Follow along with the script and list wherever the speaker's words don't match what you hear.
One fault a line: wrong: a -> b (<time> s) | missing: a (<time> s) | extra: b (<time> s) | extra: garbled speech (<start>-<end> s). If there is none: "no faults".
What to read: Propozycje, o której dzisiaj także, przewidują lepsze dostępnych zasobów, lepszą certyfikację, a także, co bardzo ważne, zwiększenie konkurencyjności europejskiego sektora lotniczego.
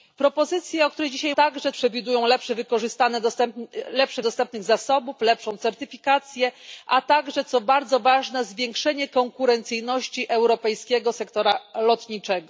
no faults